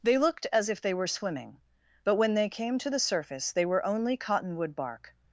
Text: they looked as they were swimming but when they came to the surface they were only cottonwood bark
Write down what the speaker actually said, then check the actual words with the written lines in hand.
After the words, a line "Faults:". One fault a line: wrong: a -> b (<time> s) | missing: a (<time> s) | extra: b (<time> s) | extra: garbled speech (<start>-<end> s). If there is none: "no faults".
they looked as if they were swimming but when they came to the surface they were only cottonwood bark
Faults:
extra: if (0.7 s)